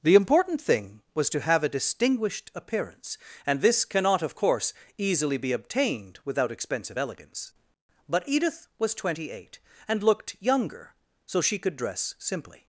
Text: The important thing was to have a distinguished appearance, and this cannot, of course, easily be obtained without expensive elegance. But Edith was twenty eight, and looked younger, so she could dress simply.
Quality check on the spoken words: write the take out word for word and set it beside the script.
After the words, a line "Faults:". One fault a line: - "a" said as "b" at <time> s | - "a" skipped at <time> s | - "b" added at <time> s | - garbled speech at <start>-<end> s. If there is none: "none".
The important thing was to have a distinguished appearance, and this cannot, of course, easily be obtained without expensive elegance. But Edith was twenty eight, and looked younger, so she could dress simply.
Faults:
none